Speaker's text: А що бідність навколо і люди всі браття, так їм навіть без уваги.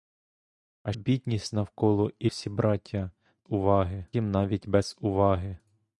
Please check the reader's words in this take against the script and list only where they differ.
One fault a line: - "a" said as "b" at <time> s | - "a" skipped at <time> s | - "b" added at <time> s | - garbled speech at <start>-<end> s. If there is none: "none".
- "що" skipped at 0.9 s
- "люди" skipped at 2.3 s
- "так" said as "уваги" at 3.5 s